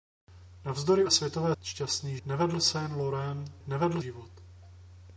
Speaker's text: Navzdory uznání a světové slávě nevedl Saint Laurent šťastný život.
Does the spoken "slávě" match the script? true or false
false